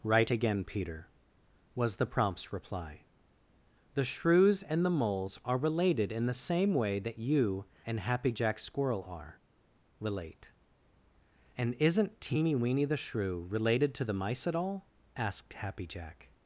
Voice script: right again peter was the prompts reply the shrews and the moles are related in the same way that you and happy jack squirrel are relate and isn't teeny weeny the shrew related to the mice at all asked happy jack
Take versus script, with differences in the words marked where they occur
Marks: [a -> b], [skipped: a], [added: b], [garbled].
right again peter was the prompts reply the shrews and the moles are related in the same way that you and happy jack squirrel are relate and isn't teeny weeny the shrew related to the mice at all asked happy jack